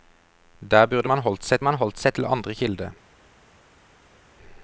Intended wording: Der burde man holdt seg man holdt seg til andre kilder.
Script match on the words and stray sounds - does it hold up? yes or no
yes